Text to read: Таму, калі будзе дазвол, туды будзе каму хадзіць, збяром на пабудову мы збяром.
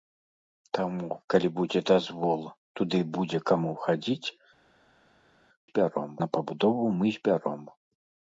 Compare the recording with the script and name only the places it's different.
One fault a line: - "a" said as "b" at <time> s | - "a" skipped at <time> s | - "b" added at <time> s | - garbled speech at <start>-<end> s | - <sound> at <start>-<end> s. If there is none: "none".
none